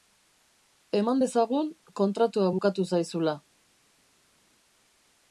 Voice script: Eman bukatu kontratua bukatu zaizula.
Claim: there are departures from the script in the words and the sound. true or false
true